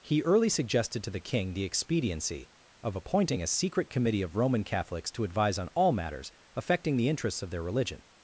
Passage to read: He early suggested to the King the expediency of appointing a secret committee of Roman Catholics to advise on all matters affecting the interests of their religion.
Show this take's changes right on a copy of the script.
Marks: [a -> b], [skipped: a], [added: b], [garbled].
He early suggested to the King the expediency of appointing a secret committee of Roman Catholics to advise on all matters affecting the interests of their religion.